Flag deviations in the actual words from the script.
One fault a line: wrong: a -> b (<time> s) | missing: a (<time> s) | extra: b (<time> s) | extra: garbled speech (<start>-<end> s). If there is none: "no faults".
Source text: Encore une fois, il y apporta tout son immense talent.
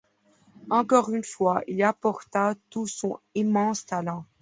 no faults